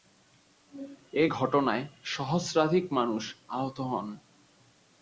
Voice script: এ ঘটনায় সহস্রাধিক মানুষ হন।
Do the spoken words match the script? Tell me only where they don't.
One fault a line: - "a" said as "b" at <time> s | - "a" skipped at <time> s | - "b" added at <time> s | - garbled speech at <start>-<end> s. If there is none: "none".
- "আহত" added at 3.5 s